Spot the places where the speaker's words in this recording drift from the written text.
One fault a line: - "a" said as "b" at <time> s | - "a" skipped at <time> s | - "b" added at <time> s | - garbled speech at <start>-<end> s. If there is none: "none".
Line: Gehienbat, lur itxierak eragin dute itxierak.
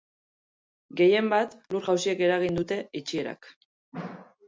- "itxierak" said as "jausiek" at 1.9 s